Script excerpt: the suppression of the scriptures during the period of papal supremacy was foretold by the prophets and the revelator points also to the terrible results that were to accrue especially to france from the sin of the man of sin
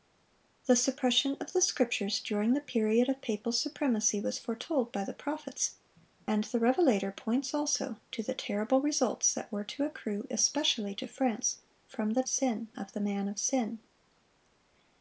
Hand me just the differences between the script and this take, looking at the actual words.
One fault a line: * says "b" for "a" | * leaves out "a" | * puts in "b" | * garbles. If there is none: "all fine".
all fine